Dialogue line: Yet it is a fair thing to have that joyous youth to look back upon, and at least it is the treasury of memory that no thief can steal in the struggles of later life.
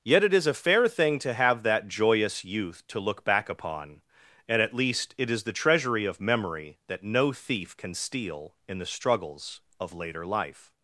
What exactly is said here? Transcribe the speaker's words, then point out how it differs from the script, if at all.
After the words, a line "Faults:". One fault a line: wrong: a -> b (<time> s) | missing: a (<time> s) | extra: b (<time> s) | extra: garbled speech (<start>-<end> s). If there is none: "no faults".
Yet it is a fair thing to have that joyous youth to look back upon, and at least it is the treasury of memory that no thief can steal in the struggles of later life.
Faults:
no faults